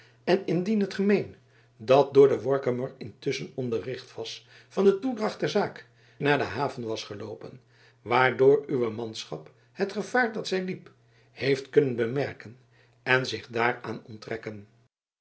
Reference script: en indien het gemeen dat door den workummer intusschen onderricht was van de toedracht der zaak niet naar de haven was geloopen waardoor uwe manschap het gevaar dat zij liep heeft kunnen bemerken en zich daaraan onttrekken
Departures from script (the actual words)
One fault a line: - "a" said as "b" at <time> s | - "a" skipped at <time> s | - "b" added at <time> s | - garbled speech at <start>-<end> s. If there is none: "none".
- "niet" skipped at 5.9 s